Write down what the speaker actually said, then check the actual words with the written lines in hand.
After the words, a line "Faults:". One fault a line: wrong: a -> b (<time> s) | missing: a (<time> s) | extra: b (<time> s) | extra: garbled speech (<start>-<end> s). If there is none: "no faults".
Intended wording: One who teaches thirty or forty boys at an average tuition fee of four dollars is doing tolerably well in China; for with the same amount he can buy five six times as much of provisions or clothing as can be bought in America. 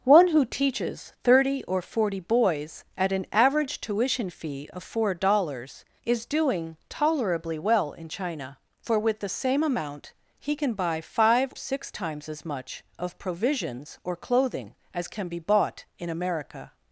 One who teaches thirty or forty boys at an average tuition fee of four dollars is doing tolerably well in China; for with the same amount he can buy five six times as much of provisions or clothing as can be bought in America.
Faults:
no faults